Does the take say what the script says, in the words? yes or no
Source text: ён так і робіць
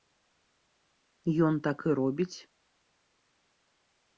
yes